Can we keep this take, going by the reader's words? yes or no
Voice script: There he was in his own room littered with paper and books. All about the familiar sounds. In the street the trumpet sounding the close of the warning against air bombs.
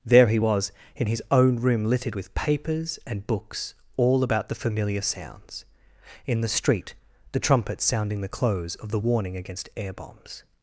no